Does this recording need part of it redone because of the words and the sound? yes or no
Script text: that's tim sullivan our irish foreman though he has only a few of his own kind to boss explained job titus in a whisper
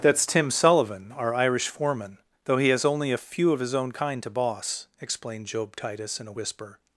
no